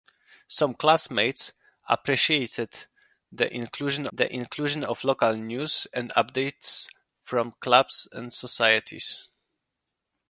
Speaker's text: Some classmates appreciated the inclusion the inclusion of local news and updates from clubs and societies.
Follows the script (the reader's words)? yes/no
yes